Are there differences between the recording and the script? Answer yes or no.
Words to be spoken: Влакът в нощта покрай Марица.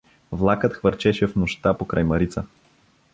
yes